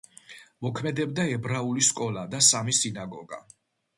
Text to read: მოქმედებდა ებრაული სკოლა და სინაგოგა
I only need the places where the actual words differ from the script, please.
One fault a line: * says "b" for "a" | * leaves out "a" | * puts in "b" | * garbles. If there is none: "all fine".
* puts in "სამი"